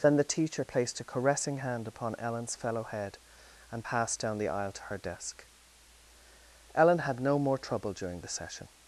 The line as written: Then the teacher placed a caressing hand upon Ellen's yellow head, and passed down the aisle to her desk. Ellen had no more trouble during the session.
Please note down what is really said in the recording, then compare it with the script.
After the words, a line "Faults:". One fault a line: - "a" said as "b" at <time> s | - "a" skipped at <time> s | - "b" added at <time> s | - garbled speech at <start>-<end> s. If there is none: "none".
Then the teacher placed a caressing hand upon Ellen's fellow head, and passed down the aisle to her desk. Ellen had no more trouble during the session.
Faults:
- "yellow" said as "fellow" at 2.5 s